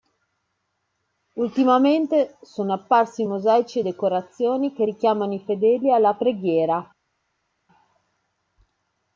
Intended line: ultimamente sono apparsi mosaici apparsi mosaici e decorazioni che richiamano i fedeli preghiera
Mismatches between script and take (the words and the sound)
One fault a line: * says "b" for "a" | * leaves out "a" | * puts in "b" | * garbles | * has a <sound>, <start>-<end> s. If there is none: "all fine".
* leaves out "apparsi mosaici"
* puts in "alla"